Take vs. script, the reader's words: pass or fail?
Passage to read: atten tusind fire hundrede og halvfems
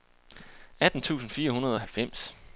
pass